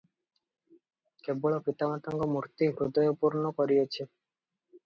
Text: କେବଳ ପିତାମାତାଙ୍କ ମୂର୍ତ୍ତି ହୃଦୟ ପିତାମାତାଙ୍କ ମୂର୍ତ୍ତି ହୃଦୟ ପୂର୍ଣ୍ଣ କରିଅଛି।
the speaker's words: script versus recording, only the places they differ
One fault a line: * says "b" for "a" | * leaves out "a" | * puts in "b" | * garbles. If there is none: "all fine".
* leaves out "ପିତାମାତାଙ୍କ ମୂର୍ତ୍ତି ହୃଦୟ"